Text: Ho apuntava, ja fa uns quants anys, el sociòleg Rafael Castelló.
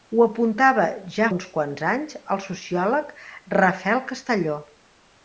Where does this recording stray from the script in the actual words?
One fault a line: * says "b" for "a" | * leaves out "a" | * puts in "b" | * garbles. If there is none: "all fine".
* leaves out "fa"